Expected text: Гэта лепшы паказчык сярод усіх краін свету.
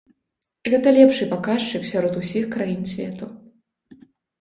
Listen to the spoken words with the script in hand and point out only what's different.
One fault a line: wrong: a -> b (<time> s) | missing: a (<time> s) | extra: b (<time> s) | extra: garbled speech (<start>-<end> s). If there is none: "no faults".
no faults